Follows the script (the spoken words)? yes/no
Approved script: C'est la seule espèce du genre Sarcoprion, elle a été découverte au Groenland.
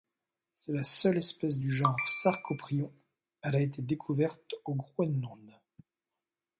yes